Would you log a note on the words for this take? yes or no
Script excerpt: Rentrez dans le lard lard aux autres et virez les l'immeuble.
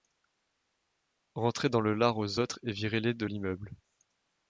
yes